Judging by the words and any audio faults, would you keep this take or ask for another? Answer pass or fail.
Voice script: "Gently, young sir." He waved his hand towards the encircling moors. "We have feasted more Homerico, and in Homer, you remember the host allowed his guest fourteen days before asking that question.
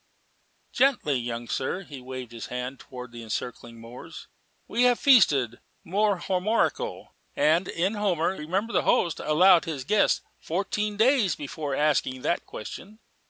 fail